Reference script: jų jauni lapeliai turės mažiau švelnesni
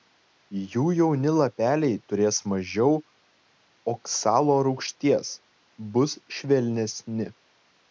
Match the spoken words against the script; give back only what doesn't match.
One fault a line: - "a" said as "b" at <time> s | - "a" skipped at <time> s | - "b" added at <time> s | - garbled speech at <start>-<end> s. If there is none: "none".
- "oksalo rūgšties bus" added at 4.0 s